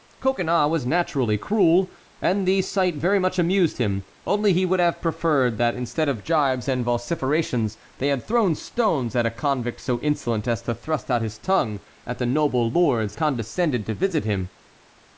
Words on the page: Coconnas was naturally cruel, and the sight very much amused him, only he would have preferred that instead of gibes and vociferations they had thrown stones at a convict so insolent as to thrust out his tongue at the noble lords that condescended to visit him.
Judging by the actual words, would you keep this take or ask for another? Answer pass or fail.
fail